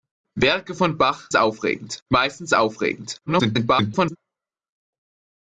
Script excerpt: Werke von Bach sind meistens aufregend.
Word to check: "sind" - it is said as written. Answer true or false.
false